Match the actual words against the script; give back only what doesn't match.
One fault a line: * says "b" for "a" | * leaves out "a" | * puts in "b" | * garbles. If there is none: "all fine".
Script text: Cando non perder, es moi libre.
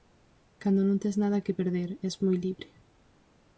* puts in "tes nada que"